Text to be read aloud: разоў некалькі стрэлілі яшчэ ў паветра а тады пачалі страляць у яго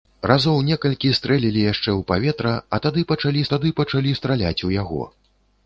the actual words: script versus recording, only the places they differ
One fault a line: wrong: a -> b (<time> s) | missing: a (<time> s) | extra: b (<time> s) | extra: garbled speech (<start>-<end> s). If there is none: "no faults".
extra: тады пачалі (3.6 s)